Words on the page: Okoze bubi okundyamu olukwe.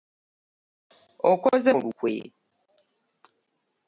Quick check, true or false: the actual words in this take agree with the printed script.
false